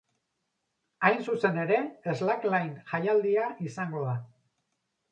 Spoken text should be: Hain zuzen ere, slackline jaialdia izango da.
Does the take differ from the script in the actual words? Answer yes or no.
no